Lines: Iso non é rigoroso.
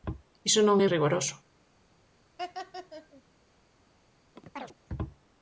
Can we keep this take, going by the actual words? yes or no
yes